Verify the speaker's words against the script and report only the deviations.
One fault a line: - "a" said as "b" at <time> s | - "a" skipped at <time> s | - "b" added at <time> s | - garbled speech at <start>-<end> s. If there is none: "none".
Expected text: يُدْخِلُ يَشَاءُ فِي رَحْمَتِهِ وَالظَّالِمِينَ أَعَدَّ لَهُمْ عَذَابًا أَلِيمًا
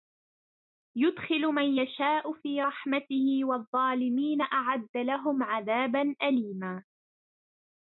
- "مَنْ" added at 1.6 s